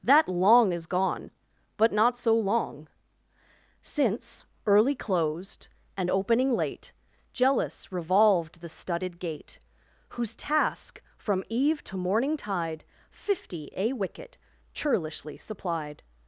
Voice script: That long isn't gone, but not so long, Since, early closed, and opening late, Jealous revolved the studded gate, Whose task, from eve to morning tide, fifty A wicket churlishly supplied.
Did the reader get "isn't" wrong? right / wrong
wrong